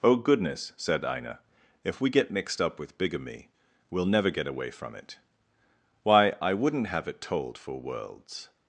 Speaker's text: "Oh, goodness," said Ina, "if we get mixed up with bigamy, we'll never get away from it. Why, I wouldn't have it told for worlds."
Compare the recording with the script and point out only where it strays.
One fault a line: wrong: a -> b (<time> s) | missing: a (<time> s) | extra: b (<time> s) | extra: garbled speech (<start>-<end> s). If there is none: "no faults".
no faults